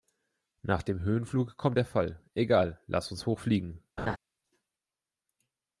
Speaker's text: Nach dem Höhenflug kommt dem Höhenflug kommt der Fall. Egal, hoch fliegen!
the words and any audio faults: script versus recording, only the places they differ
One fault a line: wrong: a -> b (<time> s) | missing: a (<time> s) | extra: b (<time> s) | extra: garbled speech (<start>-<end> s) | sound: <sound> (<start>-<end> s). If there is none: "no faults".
missing: dem Höhenflug kommt (1.8 s)
extra: lass uns (2.9 s)
sound: laugh (4.0-4.2 s)